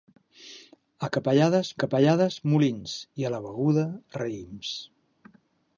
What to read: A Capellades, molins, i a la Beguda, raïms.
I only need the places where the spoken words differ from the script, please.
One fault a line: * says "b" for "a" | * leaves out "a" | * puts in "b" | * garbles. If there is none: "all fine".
* puts in "Capellades"